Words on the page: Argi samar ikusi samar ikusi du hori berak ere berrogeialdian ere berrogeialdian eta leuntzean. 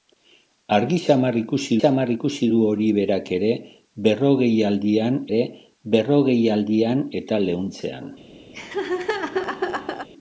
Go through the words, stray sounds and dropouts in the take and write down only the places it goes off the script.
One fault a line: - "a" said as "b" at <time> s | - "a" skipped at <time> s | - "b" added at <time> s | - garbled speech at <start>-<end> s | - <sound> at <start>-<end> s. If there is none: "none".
- laugh at 8.5-10.1 s